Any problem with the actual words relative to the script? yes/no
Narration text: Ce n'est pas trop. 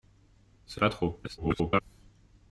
yes